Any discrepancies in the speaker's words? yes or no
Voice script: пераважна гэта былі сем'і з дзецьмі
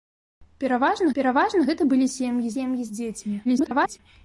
yes